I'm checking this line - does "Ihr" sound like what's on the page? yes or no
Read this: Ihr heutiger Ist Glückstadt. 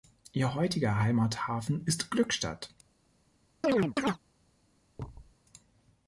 yes